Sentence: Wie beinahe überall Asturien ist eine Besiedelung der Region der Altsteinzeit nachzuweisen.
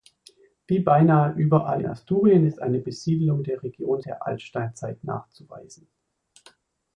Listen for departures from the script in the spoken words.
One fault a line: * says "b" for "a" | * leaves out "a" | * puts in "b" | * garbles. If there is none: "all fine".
all fine